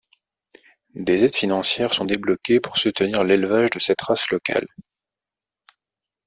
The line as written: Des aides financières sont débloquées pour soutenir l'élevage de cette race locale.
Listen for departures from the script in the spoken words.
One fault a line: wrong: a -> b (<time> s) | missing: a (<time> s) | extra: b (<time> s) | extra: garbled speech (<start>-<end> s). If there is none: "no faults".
no faults